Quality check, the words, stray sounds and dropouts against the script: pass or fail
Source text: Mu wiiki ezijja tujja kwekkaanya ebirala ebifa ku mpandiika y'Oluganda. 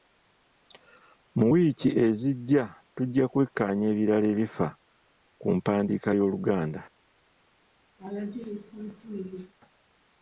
fail